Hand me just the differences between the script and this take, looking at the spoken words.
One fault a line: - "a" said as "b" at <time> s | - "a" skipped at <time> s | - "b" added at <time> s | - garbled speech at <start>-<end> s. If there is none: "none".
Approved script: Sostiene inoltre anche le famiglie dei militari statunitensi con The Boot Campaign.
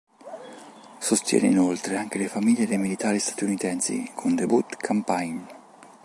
none